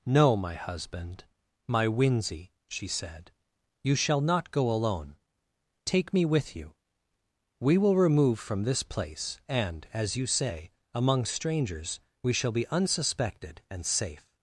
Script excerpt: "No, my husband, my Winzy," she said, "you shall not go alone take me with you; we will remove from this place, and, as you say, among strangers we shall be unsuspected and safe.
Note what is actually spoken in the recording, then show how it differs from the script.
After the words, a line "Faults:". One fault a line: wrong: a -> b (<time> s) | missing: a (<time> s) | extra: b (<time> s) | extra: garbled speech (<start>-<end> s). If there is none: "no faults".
"No, my husband, my Winzy," she said, "you shall not go alone take me with you; we will remove from this place, and, as you say, among strangers we shall be unsuspected and safe.
Faults:
no faults